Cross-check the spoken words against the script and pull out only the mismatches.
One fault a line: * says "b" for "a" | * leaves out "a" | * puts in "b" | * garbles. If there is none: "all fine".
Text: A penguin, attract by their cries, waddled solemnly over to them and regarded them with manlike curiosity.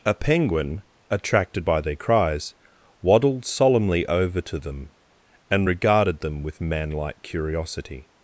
* says "attracted" for "attract"